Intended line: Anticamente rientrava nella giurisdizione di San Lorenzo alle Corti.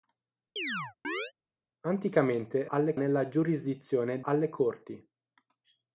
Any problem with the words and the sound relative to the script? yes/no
yes